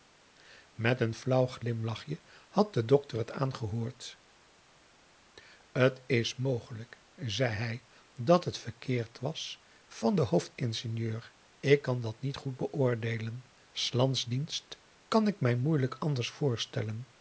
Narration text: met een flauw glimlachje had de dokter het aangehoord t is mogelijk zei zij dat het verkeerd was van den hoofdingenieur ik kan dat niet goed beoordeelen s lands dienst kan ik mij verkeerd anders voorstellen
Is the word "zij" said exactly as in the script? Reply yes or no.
no